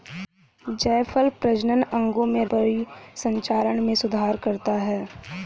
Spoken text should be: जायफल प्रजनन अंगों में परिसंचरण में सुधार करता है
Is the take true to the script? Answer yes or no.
yes